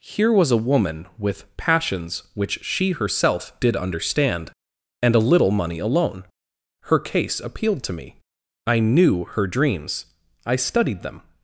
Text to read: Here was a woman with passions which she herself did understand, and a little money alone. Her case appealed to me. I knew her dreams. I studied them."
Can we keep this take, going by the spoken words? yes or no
yes